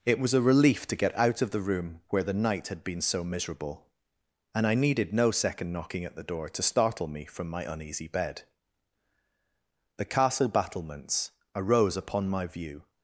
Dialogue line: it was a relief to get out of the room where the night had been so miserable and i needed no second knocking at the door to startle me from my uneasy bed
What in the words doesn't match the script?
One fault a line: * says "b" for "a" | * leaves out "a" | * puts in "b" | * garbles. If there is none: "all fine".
* puts in "the castle battlements arose upon my view"